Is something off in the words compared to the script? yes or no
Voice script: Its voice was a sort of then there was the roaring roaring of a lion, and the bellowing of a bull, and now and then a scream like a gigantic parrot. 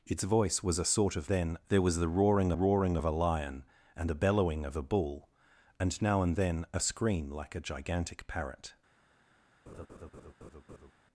no